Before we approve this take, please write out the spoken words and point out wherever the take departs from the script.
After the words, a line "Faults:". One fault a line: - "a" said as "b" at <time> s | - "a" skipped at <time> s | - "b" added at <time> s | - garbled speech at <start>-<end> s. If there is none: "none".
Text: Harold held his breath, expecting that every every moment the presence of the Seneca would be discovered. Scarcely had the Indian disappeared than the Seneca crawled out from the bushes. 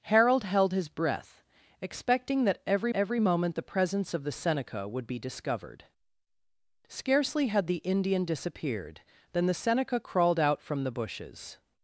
Harold held his breath, expecting that every every moment the presence of the Seneca would be discovered. Scarcely had the Indian disappeared than the Seneca crawled out from the bushes.
Faults:
none